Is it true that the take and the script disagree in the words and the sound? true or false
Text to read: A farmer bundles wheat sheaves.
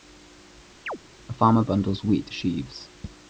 true